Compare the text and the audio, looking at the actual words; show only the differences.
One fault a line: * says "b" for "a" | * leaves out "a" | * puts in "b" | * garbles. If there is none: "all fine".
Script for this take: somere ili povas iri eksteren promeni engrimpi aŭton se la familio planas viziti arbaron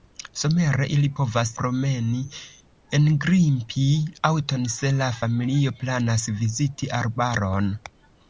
* leaves out "iri eksteren"